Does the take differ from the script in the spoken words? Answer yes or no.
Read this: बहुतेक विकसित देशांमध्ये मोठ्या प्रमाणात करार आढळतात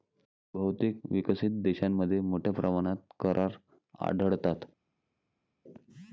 no